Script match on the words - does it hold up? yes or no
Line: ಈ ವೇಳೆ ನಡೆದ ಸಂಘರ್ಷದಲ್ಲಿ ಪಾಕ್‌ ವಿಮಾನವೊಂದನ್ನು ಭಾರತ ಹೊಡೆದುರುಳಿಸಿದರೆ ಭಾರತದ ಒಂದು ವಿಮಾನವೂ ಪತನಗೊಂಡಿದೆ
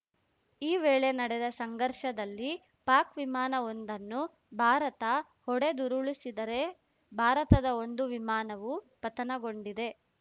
yes